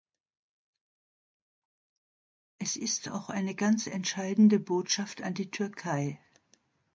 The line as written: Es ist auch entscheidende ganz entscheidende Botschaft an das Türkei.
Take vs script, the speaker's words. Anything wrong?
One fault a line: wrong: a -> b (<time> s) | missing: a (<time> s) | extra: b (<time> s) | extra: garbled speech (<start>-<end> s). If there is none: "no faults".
wrong: entscheidende -> eine (3.3 s)
wrong: das -> die (5.3 s)